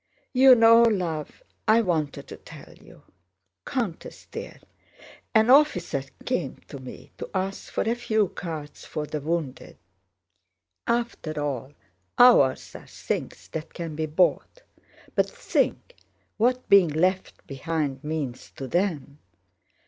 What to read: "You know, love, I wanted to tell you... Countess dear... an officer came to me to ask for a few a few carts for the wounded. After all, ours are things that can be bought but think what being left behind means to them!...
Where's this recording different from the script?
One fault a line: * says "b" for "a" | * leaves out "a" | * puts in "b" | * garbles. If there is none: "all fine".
* leaves out "a few"